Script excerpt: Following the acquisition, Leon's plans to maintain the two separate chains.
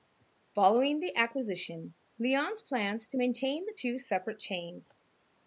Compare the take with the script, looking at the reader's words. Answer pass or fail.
pass